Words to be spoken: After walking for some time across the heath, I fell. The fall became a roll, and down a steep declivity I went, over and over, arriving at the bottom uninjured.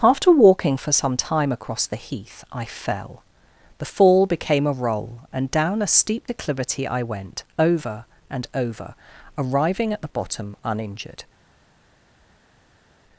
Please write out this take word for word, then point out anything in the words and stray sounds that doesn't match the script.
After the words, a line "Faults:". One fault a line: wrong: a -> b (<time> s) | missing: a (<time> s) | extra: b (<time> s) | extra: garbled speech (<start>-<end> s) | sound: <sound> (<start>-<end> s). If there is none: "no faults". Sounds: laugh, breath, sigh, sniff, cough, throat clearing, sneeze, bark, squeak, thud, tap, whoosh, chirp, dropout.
After walking for some time across the heath, I fell. The fall became a roll, and down a steep declivity I went, over and over, arriving at the bottom uninjured.
Faults:
no faults